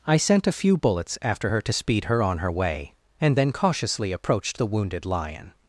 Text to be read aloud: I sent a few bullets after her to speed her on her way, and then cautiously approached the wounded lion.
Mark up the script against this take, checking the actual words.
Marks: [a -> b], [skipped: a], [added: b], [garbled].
I sent a few bullets after her to speed her on her way, and then cautiously approached the wounded lion.